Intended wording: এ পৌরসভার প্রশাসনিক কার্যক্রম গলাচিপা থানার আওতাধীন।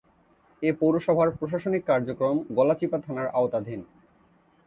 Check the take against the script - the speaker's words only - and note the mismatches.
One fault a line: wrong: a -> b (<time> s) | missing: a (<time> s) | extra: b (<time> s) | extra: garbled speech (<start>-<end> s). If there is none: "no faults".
no faults